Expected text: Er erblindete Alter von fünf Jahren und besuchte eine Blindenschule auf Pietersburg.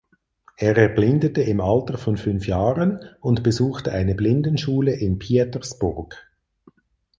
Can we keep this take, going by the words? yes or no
no